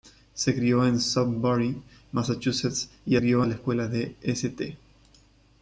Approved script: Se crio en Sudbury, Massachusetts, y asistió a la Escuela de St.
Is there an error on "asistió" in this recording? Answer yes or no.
yes